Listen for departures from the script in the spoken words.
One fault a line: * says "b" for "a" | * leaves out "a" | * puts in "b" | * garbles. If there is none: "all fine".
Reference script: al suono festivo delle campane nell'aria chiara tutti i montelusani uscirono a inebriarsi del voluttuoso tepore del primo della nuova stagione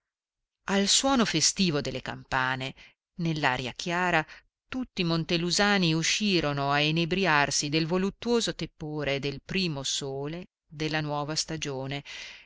* puts in "sole"